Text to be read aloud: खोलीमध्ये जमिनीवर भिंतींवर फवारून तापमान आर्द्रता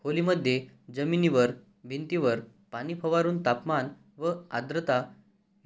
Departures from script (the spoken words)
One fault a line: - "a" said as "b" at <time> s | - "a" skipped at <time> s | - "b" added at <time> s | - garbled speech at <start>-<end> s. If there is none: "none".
- "पाणी" added at 2.7 s
- "व" added at 4.2 s